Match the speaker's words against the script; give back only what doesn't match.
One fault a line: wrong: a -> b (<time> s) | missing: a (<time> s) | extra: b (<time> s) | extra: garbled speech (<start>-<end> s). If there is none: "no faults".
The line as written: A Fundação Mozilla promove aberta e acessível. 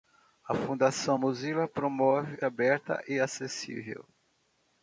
no faults